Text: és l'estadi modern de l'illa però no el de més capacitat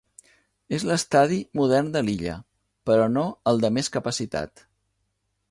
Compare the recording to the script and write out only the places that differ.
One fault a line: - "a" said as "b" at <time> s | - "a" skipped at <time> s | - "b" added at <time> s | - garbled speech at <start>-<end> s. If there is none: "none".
none